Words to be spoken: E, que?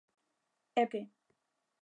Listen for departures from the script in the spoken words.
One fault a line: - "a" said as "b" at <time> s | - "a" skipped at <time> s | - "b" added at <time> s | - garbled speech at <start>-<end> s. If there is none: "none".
none